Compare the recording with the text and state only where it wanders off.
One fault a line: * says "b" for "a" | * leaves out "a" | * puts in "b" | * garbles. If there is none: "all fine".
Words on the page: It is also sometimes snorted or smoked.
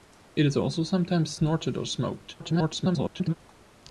* garbles